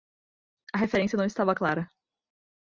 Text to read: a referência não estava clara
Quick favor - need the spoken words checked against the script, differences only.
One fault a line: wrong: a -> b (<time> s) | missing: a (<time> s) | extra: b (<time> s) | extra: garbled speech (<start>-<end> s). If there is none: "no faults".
no faults